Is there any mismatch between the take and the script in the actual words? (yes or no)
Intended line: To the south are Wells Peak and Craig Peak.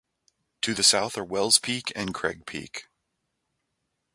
no